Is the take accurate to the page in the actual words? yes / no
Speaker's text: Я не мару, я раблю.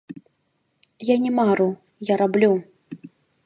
yes